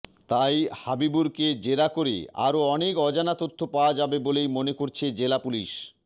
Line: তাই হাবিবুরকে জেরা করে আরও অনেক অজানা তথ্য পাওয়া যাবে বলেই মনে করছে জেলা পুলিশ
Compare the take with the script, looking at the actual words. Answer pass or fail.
pass